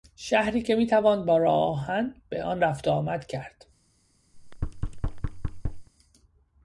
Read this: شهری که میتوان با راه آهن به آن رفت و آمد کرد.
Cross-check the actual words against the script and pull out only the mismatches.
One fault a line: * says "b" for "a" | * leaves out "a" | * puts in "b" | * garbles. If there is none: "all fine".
all fine